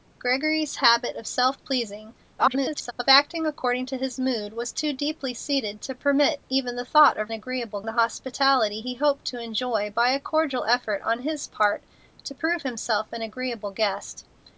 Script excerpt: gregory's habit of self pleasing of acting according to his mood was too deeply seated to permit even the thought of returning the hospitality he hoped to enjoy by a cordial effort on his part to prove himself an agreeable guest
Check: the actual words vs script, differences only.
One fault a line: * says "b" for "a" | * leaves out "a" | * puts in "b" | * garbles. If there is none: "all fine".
* garbles
* says "agreeable" for "returning"